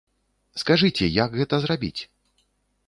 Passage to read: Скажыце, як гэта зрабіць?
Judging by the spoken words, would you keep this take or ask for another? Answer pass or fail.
pass